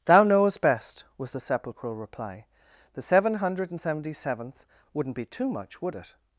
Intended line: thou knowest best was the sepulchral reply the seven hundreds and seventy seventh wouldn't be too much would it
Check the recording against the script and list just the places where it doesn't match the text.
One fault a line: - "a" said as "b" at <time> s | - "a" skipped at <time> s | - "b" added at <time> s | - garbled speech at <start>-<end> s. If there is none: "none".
- "hundreds" said as "hundred" at 3.4 s